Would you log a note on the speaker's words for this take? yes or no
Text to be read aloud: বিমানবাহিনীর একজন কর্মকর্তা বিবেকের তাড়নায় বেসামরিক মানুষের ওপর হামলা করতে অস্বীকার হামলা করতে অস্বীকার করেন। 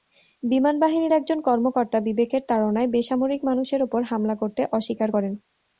yes